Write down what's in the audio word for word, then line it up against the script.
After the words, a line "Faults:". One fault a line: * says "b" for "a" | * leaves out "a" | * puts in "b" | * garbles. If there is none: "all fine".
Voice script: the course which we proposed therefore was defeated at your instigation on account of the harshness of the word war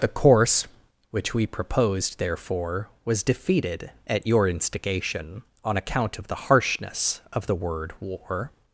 the course which we proposed therefore was defeated at your instigation on account of the harshness of the word war
Faults:
all fine